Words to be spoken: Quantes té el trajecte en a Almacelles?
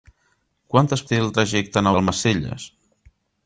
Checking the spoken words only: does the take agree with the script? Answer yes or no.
yes